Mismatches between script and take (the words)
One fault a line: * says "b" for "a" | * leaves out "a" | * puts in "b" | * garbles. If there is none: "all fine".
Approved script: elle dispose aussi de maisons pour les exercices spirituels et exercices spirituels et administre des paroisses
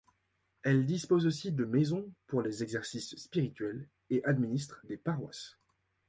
* leaves out "exercices spirituels et"